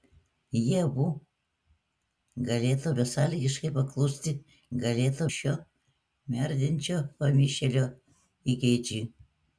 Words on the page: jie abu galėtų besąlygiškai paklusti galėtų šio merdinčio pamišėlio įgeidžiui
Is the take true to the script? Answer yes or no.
yes